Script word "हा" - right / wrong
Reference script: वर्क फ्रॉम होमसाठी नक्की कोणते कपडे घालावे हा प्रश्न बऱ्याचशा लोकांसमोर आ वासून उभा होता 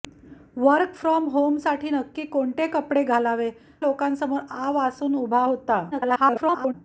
wrong